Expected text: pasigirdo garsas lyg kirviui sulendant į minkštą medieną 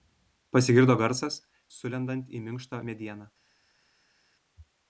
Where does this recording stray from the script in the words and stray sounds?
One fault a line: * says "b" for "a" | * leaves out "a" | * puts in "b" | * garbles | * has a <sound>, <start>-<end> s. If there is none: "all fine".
* leaves out "lyg kirviui"